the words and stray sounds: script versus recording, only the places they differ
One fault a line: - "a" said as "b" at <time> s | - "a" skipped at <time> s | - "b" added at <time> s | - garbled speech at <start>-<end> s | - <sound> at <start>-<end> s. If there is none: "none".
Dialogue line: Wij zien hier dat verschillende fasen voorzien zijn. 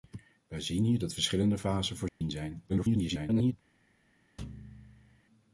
- dropout at 2.1-2.2 s
- garbled speech at 2.7-3.5 s
- thud at 4.4-5.2 s